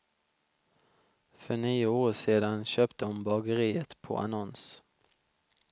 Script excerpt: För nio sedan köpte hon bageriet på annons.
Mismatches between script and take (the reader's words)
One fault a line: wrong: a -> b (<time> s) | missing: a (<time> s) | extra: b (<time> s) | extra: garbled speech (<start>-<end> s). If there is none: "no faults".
extra: år (1.9 s)